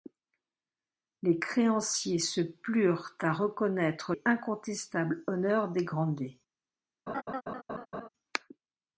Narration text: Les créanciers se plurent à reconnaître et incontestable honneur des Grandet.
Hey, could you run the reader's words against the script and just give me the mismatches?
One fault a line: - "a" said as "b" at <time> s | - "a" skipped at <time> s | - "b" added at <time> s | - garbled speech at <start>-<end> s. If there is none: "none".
none